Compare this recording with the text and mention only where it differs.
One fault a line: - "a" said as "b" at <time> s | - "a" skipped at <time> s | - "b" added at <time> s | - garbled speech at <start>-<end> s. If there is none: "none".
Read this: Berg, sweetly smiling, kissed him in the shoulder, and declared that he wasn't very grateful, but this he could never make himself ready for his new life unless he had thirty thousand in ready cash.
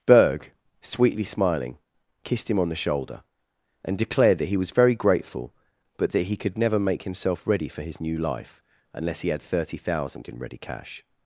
- "in" said as "on" at 2.6 s
- "wasn't" said as "was" at 4.6 s
- "this" said as "that" at 6.1 s